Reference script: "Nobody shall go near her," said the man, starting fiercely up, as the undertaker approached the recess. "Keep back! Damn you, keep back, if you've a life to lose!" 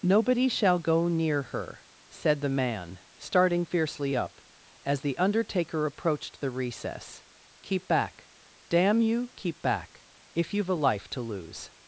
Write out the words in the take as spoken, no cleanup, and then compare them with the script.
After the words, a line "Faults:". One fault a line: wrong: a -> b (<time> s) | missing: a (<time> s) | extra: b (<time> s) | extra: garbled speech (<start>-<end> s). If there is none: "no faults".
"Nobody shall go near her," said the man, starting fiercely up, as the undertaker approached the recess. "Keep back! Damn you, keep back, if you've a life to lose!"
Faults:
no faults